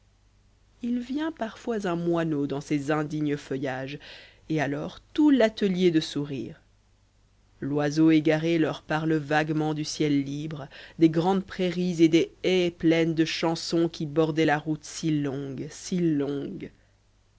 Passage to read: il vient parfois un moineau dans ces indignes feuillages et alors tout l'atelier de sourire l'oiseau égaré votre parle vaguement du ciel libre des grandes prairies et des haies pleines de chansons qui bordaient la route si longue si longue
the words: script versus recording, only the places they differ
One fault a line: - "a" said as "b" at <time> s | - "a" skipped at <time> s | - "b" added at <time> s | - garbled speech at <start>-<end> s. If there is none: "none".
- "votre" said as "leur" at 8.6 s